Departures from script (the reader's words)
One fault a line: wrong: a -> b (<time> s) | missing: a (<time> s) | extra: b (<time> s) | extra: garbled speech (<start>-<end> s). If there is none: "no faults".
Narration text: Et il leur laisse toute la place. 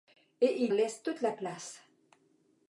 missing: leur (0.7 s)